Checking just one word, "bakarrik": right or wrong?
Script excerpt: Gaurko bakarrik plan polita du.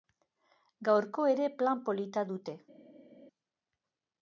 wrong